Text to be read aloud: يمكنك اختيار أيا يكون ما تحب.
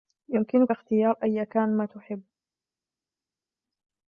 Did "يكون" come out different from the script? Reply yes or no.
yes